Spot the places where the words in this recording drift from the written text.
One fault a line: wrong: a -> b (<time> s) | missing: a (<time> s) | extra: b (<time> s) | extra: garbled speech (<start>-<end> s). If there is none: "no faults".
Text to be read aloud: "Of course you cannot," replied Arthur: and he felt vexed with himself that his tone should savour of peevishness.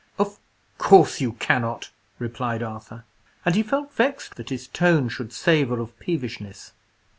missing: with himself (4.3 s)